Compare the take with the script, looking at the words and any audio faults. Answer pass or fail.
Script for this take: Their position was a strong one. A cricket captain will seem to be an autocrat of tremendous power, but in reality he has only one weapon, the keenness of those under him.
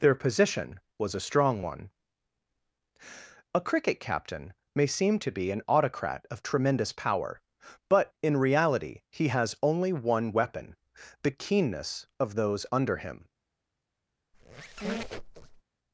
fail